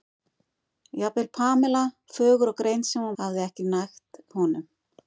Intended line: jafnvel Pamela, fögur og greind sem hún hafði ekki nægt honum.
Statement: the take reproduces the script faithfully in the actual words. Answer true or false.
true